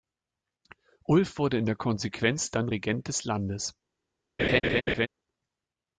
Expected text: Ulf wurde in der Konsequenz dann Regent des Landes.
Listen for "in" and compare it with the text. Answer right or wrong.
right